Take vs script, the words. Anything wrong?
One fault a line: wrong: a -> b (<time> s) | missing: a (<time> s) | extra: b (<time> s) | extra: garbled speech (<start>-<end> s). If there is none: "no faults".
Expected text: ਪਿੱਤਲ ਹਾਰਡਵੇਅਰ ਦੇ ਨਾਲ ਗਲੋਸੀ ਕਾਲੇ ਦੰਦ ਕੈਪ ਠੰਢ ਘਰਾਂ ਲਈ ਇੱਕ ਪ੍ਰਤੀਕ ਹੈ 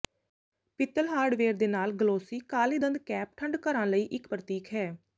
no faults